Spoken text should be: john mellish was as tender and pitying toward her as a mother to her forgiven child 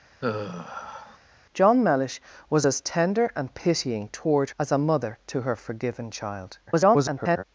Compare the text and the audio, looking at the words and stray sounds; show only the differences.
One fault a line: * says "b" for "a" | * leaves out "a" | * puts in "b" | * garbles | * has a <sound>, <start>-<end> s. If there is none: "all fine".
* has a sigh, 0.2-1.2 s
* leaves out "her"
* garbles